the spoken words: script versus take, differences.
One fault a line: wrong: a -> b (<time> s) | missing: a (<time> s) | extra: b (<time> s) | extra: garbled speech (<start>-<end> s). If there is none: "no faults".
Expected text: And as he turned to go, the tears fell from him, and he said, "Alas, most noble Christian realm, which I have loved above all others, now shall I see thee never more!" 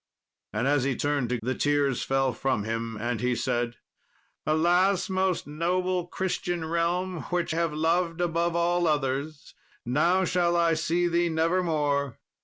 missing: go (1.4 s)
missing: I (7.5 s)